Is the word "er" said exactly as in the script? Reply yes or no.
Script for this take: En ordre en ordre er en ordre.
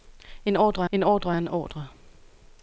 yes